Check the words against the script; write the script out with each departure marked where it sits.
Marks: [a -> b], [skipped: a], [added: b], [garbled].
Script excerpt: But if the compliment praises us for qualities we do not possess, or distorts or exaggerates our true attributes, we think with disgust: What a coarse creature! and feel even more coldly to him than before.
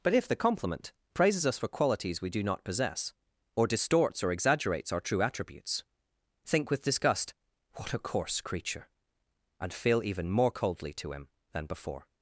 But if the compliment praises us for qualities we do not possess, or distorts or exaggerates our true attributes, [skipped: we] think with disgust: What a coarse creature! and feel even more coldly to him than before.